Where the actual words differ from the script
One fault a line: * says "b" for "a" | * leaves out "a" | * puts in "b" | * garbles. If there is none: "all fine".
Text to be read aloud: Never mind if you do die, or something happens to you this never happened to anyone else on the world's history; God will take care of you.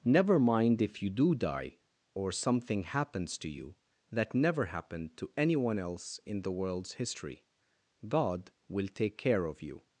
* says "that" for "this"
* says "in" for "on"